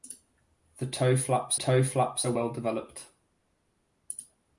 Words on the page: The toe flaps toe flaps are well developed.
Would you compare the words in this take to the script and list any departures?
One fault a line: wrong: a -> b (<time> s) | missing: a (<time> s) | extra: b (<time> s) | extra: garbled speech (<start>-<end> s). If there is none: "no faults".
no faults